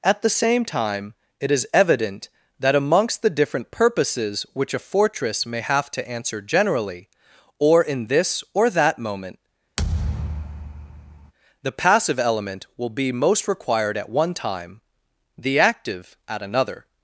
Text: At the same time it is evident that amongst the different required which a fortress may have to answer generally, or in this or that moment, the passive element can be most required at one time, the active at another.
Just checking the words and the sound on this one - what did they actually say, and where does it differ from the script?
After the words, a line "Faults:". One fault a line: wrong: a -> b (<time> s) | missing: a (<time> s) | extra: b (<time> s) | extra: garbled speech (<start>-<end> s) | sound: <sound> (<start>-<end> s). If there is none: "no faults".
At the same time it is evident that amongst the different purposes which a fortress may have to answer generally, or in this or that moment, the passive element will be most required at one time, the active at another.
Faults:
wrong: required -> purposes (3.7 s)
sound: thud (9.8-11.3 s)
wrong: can -> will (12.8 s)